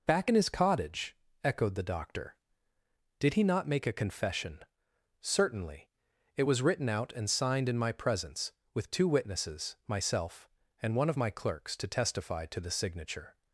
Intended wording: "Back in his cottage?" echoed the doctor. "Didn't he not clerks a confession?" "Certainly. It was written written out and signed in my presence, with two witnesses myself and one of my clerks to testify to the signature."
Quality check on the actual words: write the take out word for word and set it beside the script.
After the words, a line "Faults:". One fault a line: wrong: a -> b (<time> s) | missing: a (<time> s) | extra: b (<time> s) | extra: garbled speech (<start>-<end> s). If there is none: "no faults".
"Back in his cottage?" echoed the doctor. "Did he not make a confession?" "Certainly. It was written out and signed in my presence, with two witnesses myself and one of my clerks to testify to the signature."
Faults:
wrong: Didn't -> Did (3.2 s)
wrong: clerks -> make (3.7 s)
missing: written (6.9 s)